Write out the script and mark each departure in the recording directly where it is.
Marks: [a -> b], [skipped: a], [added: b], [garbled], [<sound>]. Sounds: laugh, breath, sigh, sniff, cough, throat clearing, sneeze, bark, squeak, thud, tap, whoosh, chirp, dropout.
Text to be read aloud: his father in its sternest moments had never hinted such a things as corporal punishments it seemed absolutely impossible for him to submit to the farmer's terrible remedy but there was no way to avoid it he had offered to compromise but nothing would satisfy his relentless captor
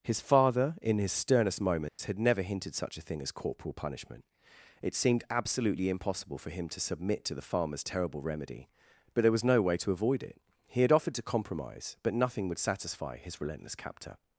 his father in [its -> his] sternest moments [dropout] had never hinted such a [things -> thing] as corporal [punishments -> punishment] it seemed absolutely impossible for him to submit to the farmer's terrible remedy but there was no way to avoid it he had offered to compromise but nothing would satisfy his relentless captor